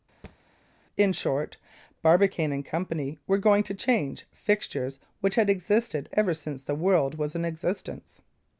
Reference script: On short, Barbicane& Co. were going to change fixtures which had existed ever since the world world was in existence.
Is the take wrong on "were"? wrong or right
right